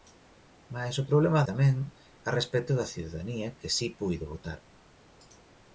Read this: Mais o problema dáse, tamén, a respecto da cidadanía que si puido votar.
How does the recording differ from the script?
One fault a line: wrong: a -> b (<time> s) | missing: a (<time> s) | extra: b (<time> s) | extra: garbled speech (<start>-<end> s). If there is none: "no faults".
missing: dáse (1.4 s)